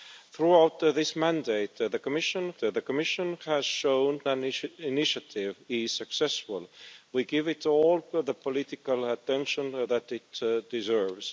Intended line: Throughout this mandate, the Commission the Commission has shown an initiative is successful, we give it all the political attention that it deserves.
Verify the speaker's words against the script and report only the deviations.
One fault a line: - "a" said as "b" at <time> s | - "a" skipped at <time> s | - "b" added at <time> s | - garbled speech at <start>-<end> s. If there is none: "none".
none